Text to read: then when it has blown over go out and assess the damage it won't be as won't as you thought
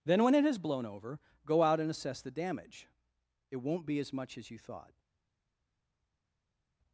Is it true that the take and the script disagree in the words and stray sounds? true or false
true